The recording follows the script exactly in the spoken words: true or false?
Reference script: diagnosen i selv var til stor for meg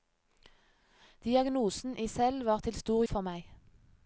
true